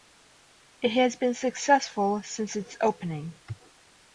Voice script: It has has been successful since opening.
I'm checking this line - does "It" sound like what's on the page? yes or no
yes